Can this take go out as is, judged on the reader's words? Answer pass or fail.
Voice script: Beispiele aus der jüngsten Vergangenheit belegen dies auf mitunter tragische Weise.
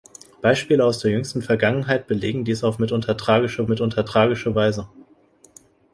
fail